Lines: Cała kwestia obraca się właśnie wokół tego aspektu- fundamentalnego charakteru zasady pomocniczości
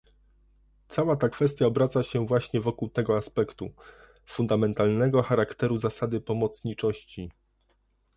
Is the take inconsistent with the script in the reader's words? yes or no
yes